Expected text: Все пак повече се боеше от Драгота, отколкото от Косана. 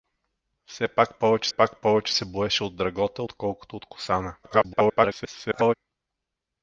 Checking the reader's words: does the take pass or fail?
fail